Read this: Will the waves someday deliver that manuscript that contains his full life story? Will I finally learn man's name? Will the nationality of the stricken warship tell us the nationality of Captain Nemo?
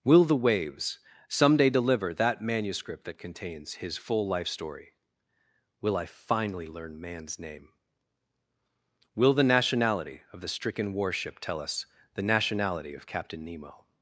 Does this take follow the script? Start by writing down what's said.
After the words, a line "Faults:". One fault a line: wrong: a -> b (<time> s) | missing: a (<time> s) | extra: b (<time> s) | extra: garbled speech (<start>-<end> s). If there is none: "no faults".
Will the waves someday deliver that manuscript that contains his full life story? Will I finally learn man's name? Will the nationality of the stricken warship tell us the nationality of Captain Nemo?
Faults:
no faults